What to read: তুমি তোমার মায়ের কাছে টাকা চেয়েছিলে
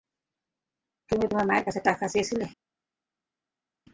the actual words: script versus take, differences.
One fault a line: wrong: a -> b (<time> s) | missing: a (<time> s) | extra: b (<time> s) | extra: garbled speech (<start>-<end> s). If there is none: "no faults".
no faults